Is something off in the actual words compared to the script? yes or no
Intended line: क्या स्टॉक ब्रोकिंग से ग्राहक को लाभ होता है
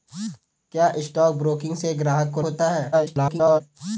yes